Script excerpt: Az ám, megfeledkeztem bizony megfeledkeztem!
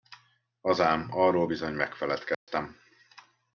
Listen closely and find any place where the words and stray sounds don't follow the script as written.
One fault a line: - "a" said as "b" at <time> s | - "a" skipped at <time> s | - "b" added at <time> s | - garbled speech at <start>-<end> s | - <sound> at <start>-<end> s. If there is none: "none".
- "megfeledkeztem" said as "arról" at 1.1 s
- dropout at 2.3-2.5 s